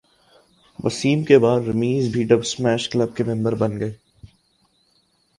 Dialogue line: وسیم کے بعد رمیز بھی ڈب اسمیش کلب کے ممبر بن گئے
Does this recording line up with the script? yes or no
yes